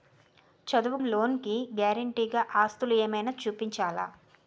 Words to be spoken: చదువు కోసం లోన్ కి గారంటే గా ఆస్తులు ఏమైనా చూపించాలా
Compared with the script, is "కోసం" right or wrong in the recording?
wrong